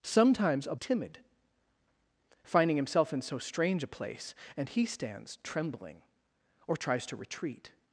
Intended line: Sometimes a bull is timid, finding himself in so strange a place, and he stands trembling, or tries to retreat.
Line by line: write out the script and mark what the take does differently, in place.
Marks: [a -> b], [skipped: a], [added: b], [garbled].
Sometimes a [skipped: bull is] timid, finding himself in so strange a place, and he stands trembling, or tries to retreat.